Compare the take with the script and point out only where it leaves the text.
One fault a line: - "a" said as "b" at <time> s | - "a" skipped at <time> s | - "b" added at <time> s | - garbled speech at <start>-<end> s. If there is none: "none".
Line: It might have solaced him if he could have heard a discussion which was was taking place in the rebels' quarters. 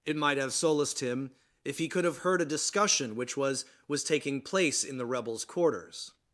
none